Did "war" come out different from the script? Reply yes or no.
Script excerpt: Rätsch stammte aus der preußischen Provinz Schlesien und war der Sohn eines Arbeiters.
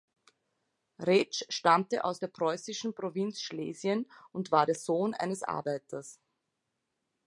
no